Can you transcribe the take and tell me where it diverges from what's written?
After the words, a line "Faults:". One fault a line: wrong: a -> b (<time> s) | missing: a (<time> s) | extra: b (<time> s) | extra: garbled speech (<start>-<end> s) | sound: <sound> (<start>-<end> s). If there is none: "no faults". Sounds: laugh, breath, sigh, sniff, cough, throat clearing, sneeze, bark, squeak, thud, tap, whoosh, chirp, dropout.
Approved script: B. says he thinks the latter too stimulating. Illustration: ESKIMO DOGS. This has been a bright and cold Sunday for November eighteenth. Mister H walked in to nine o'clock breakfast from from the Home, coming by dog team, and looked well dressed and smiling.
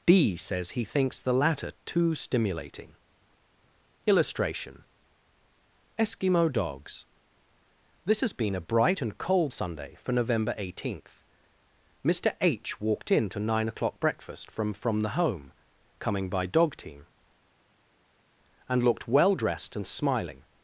B. says he thinks the latter too stimulating. Illustration: ESKIMO DOGS. This has been a bright and cold Sunday for November eighteenth. Mister H walked in to nine o'clock breakfast from from the Home, coming by dog team, and looked well dressed and smiling.
Faults:
no faults